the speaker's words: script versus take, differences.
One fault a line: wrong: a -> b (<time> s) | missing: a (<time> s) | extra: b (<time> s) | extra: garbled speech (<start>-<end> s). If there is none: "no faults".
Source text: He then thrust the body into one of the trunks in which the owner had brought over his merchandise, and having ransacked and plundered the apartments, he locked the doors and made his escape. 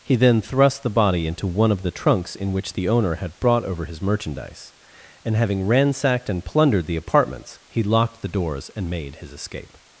no faults